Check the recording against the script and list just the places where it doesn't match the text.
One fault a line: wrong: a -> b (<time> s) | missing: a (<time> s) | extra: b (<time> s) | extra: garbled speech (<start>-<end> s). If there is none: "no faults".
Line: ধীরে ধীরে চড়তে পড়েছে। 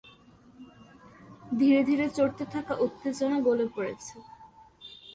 extra: থাকা উত্তেজনা গলে (2.5 s)